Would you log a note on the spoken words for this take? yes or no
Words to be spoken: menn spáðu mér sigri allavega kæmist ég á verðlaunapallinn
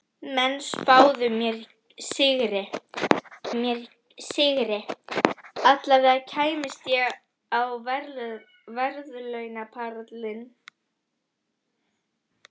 yes